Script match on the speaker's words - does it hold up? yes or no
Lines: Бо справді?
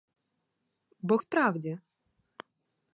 yes